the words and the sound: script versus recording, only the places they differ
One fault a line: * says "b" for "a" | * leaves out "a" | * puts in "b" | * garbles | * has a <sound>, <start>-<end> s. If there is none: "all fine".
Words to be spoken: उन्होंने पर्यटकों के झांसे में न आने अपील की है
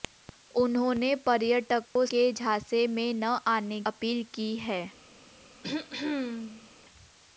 * has a dropout, 1.9-2.0 s
* has a throat clearing, 5.6-6.7 s